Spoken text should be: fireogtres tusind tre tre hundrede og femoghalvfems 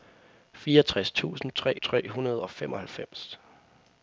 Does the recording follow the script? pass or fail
pass